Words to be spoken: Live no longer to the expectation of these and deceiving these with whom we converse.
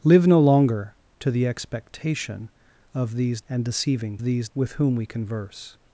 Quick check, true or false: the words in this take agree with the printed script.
true